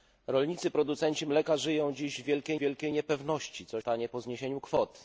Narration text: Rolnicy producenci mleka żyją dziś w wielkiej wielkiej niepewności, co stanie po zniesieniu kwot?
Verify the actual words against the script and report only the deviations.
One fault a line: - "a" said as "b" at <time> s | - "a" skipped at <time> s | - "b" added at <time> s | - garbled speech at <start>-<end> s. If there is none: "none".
none